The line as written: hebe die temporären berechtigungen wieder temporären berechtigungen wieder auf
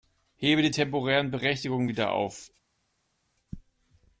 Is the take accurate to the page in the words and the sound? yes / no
no